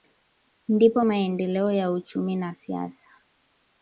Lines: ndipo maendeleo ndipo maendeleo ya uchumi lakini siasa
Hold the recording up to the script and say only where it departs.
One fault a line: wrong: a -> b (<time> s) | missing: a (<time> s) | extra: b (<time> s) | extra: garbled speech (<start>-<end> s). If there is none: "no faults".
missing: ndipo maendeleo (1.7 s)
wrong: lakini -> na (2.3 s)